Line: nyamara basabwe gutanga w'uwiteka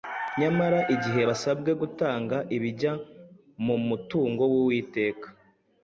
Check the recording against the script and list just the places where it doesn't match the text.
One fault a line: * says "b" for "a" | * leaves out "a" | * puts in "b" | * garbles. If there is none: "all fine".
* puts in "igihe"
* puts in "ibijya mu mutungo"